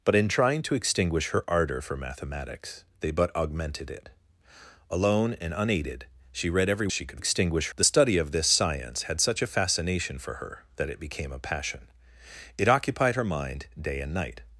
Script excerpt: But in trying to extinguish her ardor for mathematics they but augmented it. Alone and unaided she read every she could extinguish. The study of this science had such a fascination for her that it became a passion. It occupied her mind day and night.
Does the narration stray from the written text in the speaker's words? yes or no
no